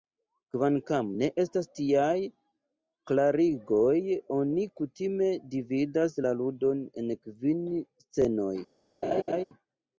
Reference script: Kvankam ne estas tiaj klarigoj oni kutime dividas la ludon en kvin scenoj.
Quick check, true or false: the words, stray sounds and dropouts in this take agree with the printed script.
false